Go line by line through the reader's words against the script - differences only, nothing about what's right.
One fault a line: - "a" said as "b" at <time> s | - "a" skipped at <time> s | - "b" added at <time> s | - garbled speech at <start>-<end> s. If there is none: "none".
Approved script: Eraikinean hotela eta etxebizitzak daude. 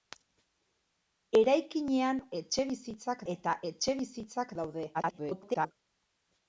- "hotela" said as "etxebizitzak" at 2.4 s
- garbled speech at 4.9-5.7 s